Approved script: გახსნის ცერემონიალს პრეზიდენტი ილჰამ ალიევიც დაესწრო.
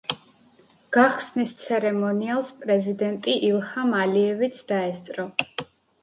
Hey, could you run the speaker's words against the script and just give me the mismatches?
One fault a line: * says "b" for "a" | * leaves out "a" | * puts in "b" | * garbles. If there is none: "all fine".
all fine